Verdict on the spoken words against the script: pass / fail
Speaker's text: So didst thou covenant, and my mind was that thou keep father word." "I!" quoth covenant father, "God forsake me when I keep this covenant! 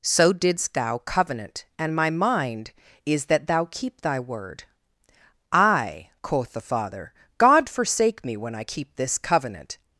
fail